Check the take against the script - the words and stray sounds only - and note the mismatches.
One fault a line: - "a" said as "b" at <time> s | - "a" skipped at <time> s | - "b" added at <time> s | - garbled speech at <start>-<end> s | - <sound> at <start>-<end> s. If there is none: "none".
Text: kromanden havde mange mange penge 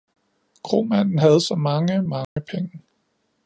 - "så" added at 1.4 s
- dropout at 2.2-2.4 s